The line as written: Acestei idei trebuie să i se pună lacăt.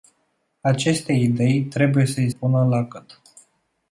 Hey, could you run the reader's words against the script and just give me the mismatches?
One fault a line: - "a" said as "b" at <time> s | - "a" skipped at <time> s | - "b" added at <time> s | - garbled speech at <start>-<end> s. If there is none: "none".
- "se" skipped at 2.3 s